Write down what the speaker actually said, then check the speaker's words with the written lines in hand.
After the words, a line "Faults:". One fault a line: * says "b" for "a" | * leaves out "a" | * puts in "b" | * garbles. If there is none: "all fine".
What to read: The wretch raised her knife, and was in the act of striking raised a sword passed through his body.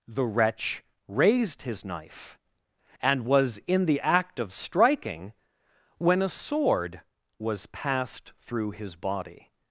The wretch raised his knife, and was in the act of striking when a sword was passed through his body.
Faults:
* says "his" for "her"
* says "when" for "raised"
* puts in "was"